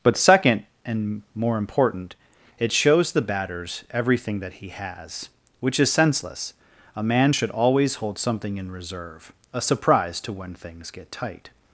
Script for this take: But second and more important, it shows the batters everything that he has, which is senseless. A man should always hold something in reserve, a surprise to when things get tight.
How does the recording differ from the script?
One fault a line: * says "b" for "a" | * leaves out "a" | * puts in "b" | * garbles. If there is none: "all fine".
all fine